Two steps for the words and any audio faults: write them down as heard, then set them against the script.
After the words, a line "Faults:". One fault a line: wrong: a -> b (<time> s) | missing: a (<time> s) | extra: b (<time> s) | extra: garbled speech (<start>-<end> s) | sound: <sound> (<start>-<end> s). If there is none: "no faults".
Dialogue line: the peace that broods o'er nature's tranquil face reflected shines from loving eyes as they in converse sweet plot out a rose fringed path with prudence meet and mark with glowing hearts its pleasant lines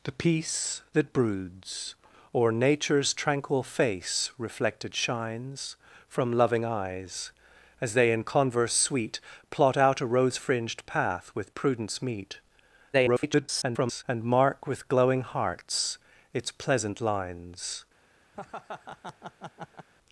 the peace that broods o'er nature's tranquil face reflected shines from loving eyes as they in converse sweet plot out a rose fringed path with prudence meet [garbled] and mark with glowing hearts its pleasant lines
Faults:
extra: garbled speech (12.9-14.0 s)
sound: laugh (18.3-19.9 s)